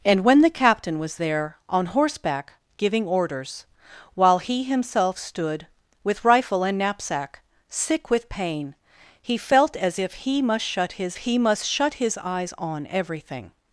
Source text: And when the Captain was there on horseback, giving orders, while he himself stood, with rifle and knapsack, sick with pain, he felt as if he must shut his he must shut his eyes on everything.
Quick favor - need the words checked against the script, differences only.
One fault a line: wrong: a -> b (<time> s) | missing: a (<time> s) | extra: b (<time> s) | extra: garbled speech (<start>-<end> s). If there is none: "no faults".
no faults